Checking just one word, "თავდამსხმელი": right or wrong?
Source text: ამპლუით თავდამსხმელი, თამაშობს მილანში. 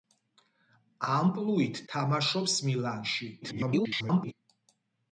wrong